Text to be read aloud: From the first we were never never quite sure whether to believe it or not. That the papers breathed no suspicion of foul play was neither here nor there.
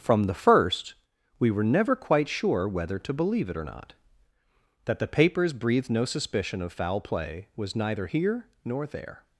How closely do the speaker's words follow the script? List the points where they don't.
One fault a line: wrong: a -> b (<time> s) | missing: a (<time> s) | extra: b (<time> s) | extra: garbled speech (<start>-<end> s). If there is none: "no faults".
missing: never (1.9 s)